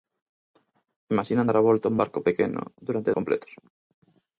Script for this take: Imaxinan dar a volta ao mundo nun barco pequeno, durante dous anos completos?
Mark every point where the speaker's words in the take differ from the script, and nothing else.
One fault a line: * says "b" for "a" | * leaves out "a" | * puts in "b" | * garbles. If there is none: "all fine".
* leaves out "mundo nun"
* leaves out "dous anos"